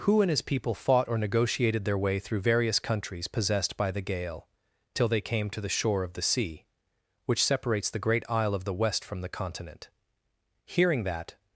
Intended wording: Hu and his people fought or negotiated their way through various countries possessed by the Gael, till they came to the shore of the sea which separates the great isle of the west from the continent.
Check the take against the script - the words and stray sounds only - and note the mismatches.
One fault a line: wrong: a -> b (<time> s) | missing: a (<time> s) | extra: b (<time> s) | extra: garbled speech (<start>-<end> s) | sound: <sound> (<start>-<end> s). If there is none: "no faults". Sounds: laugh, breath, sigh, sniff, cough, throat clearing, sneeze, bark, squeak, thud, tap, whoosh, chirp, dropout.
extra: Hearing that (10.7 s)